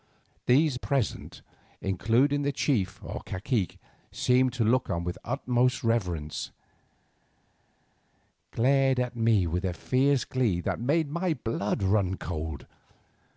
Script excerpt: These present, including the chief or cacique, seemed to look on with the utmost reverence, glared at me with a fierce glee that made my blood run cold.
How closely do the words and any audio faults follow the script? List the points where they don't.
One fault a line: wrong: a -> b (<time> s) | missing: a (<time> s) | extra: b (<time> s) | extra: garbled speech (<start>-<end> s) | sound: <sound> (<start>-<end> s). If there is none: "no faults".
no faults